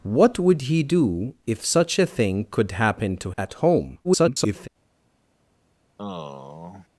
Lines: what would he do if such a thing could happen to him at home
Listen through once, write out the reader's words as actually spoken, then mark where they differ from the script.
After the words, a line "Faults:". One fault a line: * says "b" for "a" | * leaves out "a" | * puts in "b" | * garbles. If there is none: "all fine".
what would he do if such a thing could happen to at home [garbled]
Faults:
* leaves out "him"
* garbles